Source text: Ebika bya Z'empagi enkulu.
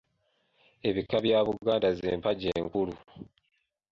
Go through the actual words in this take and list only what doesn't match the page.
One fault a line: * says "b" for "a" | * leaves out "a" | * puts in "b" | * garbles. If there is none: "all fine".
* puts in "Buganda"